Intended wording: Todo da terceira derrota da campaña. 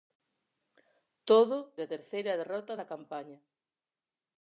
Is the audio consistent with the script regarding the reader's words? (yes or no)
yes